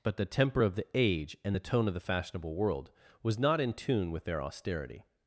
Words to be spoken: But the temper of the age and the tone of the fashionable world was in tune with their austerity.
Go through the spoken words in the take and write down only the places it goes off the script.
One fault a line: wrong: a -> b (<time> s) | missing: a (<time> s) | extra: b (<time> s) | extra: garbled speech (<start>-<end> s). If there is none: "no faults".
extra: not (3.4 s)